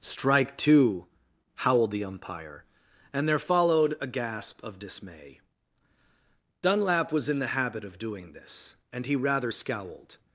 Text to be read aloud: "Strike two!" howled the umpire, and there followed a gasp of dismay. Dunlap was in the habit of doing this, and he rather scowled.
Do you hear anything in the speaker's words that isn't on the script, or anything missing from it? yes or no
no